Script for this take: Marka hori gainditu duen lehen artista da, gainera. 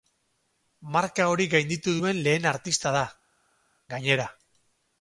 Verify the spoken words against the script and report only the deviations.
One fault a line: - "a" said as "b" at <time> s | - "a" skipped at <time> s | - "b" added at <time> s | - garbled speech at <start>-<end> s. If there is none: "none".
none